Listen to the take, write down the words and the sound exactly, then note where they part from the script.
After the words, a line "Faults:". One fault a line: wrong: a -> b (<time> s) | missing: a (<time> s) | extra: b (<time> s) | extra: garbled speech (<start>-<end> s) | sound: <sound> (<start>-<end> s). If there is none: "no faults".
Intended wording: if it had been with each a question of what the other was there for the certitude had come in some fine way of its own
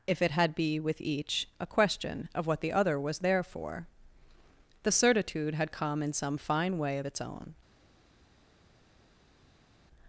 if it had be with each a question of what the other was there for the certitude had come in some fine way of its own
Faults:
wrong: been -> be (0.6 s)